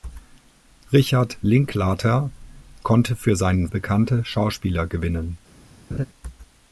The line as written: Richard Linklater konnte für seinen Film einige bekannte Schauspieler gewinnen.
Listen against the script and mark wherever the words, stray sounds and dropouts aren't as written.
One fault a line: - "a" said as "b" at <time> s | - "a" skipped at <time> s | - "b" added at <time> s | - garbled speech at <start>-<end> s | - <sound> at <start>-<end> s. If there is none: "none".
- "Film einige" skipped at 3.7 s
- laugh at 5.9-6.1 s